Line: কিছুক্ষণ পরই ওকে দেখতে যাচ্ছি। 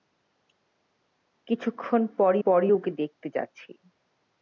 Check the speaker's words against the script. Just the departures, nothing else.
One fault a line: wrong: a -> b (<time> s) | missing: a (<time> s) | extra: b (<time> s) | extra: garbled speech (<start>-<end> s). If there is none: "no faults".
extra: পরই (2.4 s)